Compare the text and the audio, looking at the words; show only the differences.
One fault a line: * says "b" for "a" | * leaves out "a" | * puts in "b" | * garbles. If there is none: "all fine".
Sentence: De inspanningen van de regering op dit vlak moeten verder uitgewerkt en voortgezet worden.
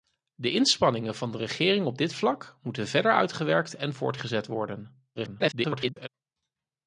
* garbles